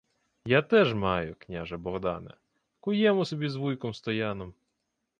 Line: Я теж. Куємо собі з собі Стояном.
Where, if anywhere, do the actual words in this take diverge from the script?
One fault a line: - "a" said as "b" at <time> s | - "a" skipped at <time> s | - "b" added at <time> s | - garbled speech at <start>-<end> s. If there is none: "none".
- "маю княже Богдане" added at 0.9 s
- "собі" said as "вуйком" at 3.5 s